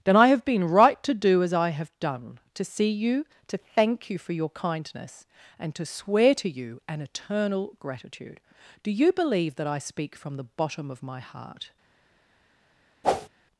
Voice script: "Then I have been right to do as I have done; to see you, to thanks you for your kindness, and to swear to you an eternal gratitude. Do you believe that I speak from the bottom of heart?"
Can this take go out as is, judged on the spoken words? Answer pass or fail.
fail